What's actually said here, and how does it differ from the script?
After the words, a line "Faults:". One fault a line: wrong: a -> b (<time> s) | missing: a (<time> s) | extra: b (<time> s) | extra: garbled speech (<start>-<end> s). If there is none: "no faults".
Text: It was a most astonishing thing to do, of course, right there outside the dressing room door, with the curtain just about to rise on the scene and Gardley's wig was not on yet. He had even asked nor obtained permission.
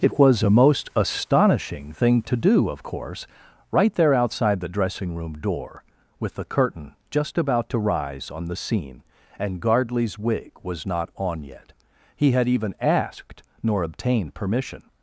It was a most astonishing thing to do, of course, right there outside the dressing room door, with the curtain just about to rise on the scene and Gardley's wig was not on yet. He had even asked nor obtained permission.
Faults:
no faults